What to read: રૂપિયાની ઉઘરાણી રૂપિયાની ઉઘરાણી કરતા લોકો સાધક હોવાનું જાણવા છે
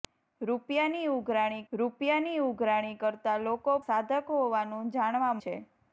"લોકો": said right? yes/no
yes